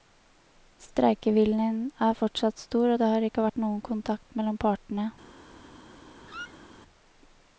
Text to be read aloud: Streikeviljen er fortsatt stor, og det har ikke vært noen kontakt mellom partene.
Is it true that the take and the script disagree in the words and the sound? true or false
true